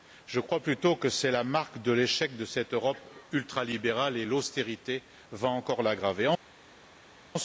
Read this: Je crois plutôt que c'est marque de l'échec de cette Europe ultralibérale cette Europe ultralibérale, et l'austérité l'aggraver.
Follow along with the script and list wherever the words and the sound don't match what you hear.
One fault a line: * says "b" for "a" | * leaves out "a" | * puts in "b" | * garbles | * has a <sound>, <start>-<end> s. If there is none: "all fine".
* puts in "la"
* says "et l'austérité va encore" for "cette Europe ultralibérale et l'austérité"